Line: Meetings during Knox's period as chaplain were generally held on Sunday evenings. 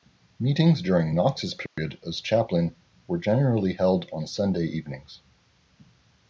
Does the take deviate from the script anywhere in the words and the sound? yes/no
yes